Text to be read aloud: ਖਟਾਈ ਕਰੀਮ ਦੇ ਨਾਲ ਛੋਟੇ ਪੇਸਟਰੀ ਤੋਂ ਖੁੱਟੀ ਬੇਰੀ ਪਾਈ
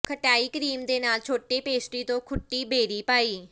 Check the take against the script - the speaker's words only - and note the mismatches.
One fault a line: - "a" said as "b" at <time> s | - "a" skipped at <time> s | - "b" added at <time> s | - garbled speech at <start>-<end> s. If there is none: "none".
none